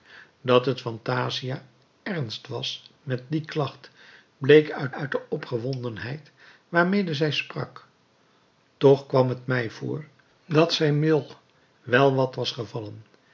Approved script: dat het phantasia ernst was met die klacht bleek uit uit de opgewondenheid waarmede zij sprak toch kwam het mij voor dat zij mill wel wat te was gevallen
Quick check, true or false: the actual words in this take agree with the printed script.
true